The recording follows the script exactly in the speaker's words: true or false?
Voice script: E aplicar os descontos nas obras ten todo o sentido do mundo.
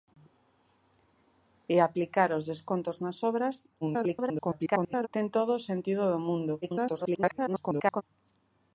false